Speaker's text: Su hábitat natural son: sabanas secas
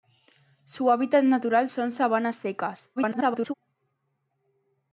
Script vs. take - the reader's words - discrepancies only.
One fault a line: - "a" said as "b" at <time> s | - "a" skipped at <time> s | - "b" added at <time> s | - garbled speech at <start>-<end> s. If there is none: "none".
- garbled speech at 3.0-3.5 s